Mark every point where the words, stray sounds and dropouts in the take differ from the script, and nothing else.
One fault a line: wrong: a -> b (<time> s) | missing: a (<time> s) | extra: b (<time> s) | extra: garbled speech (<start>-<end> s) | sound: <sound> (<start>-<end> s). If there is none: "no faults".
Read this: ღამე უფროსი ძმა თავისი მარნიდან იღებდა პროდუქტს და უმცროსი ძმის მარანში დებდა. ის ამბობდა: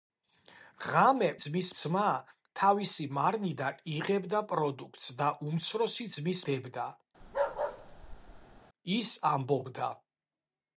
wrong: უფროსი -> ძმის (1.4 s)
missing: მარანში (6.4 s)
sound: bark (7.2-8.6 s)